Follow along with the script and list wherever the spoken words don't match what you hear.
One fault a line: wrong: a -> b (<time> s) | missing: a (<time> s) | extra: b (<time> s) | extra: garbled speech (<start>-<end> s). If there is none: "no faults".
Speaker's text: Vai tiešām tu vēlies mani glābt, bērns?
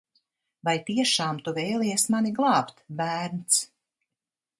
no faults